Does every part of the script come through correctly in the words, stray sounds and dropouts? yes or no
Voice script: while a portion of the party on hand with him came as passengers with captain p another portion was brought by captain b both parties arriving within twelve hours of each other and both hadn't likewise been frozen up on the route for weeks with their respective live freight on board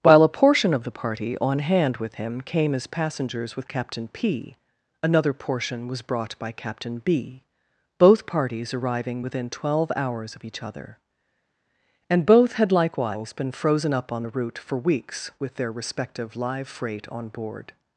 no